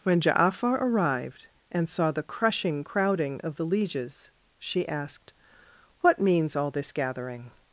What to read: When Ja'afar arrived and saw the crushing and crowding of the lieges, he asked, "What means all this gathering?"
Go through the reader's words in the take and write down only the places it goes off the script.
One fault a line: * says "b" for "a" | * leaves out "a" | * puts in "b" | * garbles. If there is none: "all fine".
* leaves out "and"
* says "she" for "he"